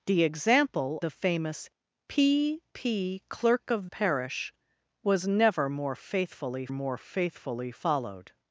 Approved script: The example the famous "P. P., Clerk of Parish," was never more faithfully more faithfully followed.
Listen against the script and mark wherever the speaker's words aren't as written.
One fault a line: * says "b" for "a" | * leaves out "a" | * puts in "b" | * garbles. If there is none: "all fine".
all fine